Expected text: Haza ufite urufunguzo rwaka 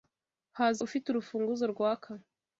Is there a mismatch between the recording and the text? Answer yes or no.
no